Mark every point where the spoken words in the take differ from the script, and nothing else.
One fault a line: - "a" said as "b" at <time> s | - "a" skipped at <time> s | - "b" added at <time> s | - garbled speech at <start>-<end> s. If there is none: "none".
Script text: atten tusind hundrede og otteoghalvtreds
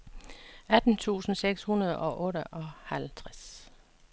- "seks" added at 1.4 s